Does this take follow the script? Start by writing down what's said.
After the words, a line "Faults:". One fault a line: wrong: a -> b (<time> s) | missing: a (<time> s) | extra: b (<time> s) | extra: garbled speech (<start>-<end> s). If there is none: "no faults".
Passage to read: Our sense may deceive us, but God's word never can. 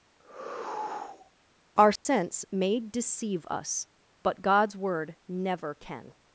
Our sense may deceive us, but God's word never can.
Faults:
no faults